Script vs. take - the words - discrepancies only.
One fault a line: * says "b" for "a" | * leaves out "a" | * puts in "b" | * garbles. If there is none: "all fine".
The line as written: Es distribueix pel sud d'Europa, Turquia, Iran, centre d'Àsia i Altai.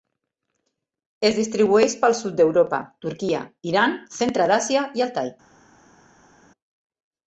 all fine